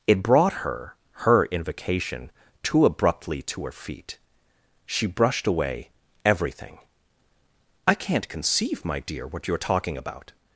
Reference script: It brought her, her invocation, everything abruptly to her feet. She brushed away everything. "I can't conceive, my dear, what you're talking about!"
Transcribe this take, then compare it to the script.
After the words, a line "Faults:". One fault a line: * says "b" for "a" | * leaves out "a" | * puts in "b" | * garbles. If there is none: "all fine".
It brought her, her invocation, too abruptly to her feet. She brushed away everything. "I can't conceive, my dear, what you're talking about!"
Faults:
* says "too" for "everything"